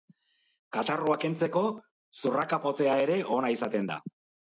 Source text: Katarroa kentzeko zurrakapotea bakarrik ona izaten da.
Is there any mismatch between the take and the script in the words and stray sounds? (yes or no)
yes